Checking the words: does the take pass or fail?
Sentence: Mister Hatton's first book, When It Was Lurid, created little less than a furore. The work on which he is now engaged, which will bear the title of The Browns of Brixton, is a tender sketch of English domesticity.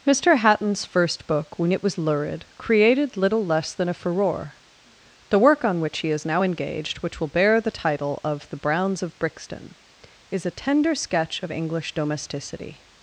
pass